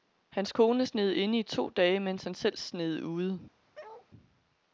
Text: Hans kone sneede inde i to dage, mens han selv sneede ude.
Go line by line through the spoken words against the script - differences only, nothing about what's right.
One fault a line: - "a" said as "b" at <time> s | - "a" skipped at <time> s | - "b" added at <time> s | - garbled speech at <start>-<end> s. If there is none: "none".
none